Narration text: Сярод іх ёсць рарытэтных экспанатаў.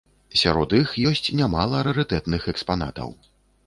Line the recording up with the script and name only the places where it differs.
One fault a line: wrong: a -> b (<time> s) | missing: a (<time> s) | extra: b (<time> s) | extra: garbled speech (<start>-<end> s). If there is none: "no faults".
extra: нямала (1.4 s)